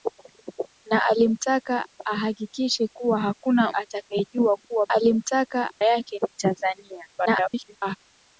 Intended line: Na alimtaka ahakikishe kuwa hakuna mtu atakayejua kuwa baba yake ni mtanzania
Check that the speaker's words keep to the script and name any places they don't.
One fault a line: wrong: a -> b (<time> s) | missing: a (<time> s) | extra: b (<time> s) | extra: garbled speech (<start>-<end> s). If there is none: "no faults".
missing: mtu (3.7 s)
wrong: baba -> alimtaka (4.9 s)
extra: garbled speech (7.1-8.0 s)